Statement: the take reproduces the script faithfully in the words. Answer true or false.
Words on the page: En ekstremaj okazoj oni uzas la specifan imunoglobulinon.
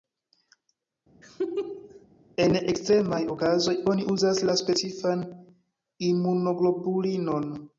true